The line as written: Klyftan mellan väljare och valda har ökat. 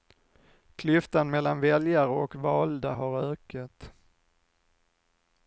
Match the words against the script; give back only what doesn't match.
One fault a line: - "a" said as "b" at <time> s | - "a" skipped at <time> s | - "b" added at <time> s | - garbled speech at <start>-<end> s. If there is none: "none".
none